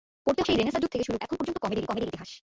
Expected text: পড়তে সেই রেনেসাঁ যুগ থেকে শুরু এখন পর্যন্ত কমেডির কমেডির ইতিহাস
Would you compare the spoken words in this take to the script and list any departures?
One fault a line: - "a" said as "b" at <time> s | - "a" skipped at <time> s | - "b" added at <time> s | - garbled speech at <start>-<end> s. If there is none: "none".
none